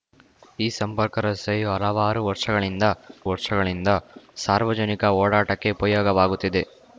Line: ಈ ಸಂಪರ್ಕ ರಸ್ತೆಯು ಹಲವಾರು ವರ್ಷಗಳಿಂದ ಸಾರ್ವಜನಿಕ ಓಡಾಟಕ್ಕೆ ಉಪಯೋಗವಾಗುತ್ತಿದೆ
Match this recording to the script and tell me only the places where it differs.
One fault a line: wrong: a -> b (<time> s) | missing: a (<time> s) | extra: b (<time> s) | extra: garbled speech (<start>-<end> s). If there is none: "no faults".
extra: ವರ್ಷಗಳಿಂದ (3.3 s)